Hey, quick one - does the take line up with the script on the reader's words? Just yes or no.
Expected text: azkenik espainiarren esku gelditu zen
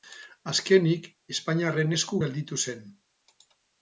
yes